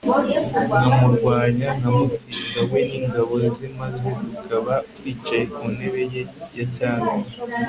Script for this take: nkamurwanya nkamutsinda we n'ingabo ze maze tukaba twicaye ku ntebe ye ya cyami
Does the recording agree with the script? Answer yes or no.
yes